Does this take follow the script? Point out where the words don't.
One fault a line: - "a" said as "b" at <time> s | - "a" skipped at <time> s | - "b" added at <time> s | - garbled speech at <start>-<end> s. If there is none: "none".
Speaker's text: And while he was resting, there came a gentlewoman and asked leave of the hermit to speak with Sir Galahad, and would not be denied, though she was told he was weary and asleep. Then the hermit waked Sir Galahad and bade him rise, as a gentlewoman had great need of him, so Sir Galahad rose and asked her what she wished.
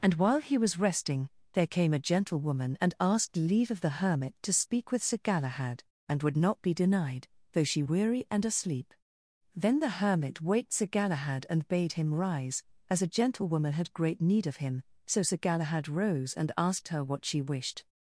- "was told he was" skipped at 7.8 s